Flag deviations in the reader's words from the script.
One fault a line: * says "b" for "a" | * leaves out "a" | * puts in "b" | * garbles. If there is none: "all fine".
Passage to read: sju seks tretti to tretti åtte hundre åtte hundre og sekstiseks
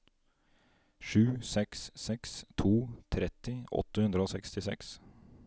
* says "seks" for "tretti"
* leaves out "åtte hundre"